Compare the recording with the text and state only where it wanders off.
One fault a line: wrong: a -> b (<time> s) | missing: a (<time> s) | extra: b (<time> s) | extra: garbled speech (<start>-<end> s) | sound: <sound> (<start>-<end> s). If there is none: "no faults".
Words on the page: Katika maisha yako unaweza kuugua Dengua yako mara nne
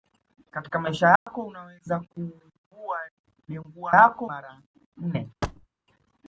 sound: dropout (1.2-1.3 s)
sound: thud (5.4-5.7 s)